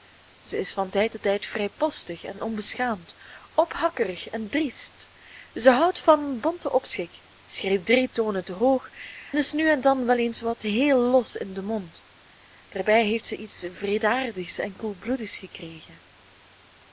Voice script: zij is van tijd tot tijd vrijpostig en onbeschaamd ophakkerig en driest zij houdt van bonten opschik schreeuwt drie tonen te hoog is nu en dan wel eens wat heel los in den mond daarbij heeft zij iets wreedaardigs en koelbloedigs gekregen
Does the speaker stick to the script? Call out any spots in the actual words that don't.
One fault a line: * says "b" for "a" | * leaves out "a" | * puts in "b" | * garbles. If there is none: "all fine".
all fine